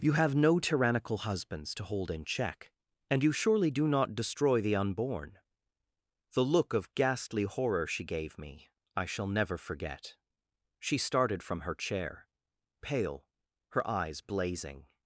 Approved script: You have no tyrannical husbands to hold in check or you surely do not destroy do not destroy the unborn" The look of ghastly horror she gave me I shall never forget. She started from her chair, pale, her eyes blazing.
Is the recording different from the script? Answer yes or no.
yes